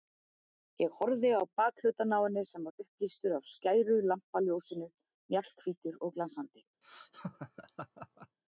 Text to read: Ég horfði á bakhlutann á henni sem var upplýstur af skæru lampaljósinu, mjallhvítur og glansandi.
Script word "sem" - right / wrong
right